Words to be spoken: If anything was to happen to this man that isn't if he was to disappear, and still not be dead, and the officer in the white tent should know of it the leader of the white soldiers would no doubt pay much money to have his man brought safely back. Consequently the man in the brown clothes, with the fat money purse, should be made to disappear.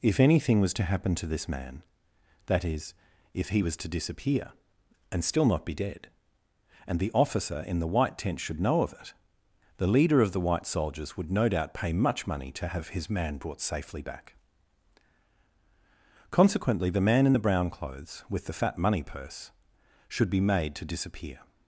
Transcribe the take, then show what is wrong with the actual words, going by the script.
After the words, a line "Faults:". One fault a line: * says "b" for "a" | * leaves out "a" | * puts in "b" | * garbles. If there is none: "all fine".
If anything was to happen to this man that is if he was to disappear, and still not be dead, and the officer in the white tent should know of it the leader of the white soldiers would no doubt pay much money to have his man brought safely back. Consequently the man in the brown clothes, with the fat money purse, should be made to disappear.
Faults:
* says "is" for "isn't"